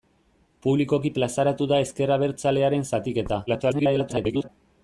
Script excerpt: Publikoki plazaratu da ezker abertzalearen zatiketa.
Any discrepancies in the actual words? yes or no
yes